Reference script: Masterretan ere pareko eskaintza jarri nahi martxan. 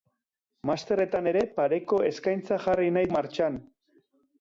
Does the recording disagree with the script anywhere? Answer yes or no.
no